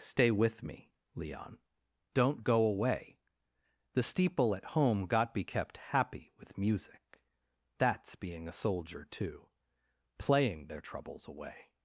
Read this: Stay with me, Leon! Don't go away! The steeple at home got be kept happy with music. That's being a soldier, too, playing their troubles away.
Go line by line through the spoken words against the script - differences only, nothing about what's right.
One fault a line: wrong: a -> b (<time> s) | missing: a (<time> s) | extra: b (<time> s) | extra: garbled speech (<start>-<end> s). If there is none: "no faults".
no faults